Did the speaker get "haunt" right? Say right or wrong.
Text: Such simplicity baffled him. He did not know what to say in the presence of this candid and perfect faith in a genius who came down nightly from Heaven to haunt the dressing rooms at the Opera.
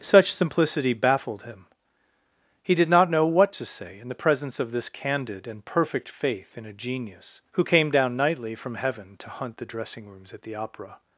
wrong